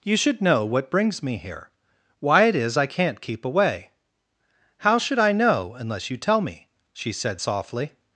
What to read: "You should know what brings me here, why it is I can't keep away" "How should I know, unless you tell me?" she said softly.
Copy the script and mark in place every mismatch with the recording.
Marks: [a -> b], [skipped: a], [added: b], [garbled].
"You should know what brings me here, why it is I can't keep away" "How should I know, unless you tell me?" she said softly.